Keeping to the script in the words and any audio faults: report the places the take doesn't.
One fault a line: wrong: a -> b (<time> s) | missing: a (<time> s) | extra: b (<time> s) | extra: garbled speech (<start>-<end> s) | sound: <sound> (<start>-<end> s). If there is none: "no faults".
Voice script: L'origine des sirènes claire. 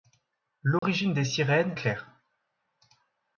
sound: dropout (0.8-0.8 s)